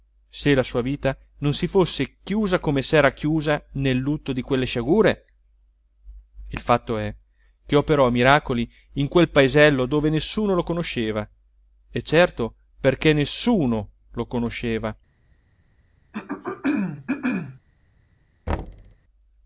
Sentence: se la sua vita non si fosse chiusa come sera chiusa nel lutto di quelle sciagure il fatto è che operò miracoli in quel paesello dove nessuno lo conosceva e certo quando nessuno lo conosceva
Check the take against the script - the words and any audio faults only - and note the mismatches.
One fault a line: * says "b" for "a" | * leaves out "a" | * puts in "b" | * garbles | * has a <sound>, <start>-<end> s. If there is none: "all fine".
* says "perché" for "quando"
* has a throat clearing, 16.1-17.6 s
* has a thud, 18.5-19.0 s